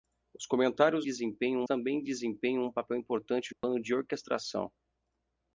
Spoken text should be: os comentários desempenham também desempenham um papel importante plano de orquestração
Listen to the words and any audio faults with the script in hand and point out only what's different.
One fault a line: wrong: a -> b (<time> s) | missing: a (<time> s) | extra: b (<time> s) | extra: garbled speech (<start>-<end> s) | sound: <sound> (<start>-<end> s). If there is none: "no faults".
sound: dropout (3.6-3.6 s)